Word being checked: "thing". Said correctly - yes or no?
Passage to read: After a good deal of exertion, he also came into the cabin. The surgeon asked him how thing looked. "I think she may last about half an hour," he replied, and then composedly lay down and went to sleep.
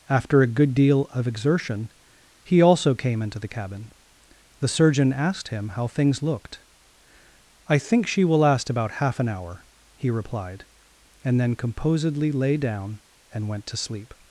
no